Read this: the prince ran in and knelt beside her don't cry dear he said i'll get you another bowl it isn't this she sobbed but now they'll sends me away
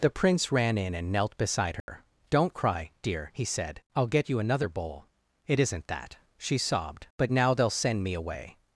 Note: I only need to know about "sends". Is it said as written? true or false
false